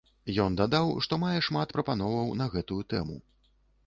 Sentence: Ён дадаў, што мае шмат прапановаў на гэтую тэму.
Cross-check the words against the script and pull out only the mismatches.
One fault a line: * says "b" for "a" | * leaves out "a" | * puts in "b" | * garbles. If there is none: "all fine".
all fine